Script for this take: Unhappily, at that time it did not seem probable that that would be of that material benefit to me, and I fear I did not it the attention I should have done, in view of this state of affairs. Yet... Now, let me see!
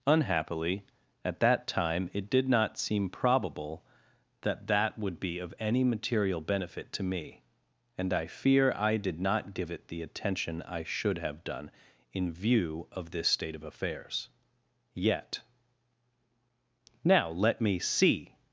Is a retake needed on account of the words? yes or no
yes